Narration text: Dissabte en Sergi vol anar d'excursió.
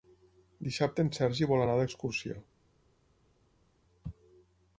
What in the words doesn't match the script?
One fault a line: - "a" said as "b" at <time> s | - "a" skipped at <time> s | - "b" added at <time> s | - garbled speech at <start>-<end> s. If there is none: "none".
none